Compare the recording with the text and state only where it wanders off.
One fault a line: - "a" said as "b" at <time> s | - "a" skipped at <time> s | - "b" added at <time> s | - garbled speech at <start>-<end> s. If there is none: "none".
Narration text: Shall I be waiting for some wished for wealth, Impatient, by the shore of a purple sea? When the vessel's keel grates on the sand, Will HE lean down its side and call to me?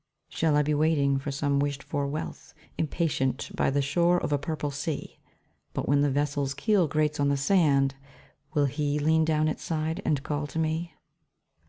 - "But" added at 5.7 s